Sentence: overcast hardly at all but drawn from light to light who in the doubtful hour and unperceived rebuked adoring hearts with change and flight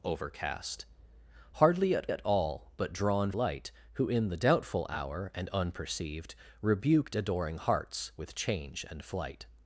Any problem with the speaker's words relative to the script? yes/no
yes